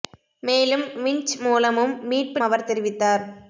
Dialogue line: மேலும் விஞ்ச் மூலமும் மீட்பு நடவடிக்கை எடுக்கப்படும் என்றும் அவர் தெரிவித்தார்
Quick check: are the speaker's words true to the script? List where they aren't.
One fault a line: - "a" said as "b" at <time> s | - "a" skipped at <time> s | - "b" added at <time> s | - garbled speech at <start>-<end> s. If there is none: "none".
- "நடவடிக்கை எடுக்கப்படும் என்றும்" skipped at 2.4 s